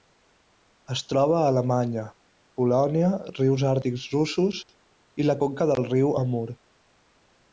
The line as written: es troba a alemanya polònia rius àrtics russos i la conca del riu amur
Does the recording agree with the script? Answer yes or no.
yes